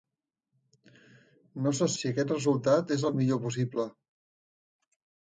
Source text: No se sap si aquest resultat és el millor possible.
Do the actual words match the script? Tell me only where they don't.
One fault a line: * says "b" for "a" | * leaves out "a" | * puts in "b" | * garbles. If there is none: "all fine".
* leaves out "sap"